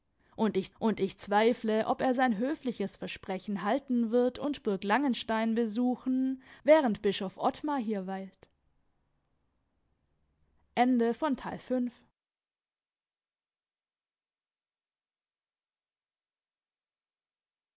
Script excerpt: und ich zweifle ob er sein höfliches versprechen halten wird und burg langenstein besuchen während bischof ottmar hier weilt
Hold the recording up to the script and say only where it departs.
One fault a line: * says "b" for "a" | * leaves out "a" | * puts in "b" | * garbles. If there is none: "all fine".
* puts in "und ich"